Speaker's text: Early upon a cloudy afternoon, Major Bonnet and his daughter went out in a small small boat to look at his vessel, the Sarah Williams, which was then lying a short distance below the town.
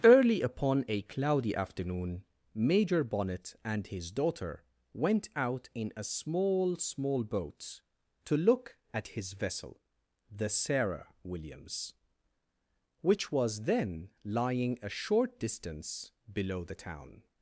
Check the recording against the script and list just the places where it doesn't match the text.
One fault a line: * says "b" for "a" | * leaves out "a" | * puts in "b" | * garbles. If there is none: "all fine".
all fine